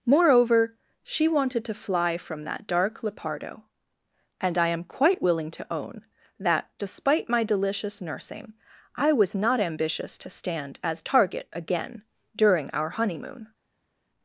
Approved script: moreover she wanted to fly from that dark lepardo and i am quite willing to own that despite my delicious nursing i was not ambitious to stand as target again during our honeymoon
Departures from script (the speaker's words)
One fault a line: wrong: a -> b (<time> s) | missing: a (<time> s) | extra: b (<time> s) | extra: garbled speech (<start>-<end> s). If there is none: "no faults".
no faults